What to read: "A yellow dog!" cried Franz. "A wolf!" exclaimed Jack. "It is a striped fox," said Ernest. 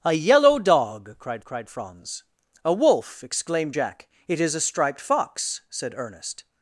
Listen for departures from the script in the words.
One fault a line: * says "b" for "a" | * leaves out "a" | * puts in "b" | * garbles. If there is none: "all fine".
* puts in "cried"